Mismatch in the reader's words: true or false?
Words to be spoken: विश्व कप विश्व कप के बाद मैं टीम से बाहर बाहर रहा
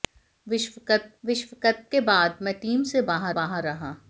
false